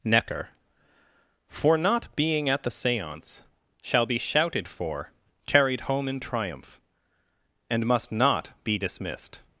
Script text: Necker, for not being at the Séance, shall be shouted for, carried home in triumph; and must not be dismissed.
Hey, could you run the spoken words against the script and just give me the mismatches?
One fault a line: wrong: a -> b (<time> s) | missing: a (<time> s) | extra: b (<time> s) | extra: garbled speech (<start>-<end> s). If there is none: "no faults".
no faults